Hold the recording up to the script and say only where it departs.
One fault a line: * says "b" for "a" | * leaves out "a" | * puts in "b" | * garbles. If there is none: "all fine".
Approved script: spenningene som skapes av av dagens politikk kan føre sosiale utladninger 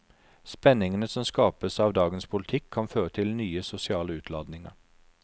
* leaves out "av"
* puts in "til nye"